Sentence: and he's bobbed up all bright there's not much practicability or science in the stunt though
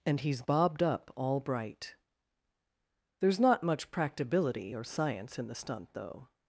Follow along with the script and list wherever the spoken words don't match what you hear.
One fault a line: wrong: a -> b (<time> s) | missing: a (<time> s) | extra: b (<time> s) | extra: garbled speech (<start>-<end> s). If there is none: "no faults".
no faults